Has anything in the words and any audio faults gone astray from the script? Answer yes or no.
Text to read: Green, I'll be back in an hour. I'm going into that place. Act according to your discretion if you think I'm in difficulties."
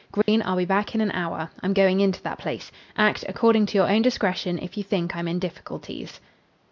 yes